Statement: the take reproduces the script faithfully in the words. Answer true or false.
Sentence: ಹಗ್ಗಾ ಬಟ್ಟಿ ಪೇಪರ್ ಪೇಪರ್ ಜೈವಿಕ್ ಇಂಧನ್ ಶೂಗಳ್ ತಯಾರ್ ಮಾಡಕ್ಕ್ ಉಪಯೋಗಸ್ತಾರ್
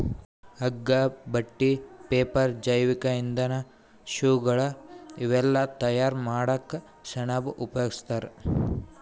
false